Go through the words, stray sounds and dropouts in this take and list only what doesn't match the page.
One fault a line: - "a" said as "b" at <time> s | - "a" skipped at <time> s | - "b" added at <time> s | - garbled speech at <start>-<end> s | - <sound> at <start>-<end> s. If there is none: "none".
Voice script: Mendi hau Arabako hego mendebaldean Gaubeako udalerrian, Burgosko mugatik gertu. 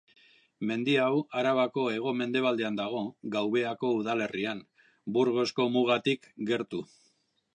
- "dago" added at 2.8 s